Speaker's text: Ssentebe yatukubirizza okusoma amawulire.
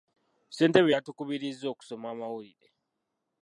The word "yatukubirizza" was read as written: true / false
true